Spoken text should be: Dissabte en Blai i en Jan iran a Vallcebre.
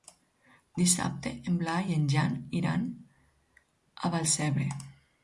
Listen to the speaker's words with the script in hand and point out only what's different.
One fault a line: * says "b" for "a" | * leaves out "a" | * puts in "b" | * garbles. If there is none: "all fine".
all fine